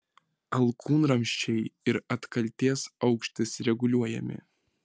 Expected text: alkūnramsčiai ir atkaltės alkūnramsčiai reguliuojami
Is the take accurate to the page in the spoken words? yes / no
no